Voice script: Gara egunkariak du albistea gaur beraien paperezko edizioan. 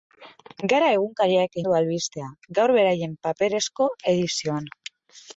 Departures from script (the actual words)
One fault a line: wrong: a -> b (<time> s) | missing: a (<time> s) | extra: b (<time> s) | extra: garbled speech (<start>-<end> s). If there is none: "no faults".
no faults